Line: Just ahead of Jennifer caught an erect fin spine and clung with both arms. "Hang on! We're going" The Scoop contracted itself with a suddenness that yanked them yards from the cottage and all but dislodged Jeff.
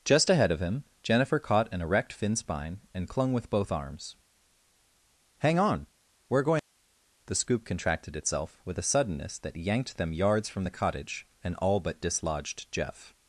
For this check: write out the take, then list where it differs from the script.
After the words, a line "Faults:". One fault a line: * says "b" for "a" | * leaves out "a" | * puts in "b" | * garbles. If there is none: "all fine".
Just ahead of him, Jennifer caught an erect fin spine and clung with both arms. "Hang on! We're going" The Scoop contracted itself with a suddenness that yanked them yards from the cottage and all but dislodged Jeff.
Faults:
* puts in "him"